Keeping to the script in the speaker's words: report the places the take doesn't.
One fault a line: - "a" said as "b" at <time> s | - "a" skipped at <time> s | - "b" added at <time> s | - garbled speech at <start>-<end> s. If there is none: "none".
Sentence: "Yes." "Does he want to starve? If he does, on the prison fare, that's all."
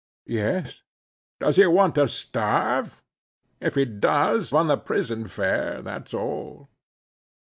none